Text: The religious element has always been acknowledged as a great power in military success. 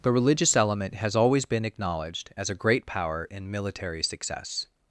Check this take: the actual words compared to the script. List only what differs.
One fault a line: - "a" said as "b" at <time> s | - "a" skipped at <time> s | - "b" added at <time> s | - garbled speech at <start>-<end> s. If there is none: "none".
none